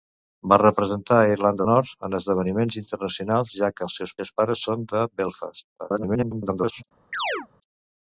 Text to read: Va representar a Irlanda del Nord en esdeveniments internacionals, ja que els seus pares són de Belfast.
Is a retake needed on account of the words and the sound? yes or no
yes